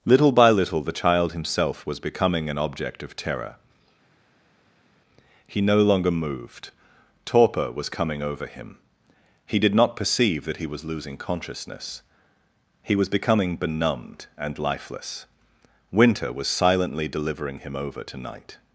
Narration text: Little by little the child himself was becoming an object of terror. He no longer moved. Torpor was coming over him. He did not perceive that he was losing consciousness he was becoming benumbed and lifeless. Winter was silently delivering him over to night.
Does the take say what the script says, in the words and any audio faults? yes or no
yes